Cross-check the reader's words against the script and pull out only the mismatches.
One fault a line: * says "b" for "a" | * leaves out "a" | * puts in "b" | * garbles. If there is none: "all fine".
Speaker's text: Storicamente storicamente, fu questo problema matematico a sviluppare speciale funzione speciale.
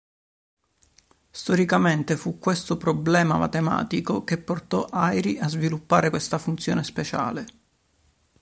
* leaves out "storicamente"
* puts in "che portò Airy"
* says "questa" for "speciale"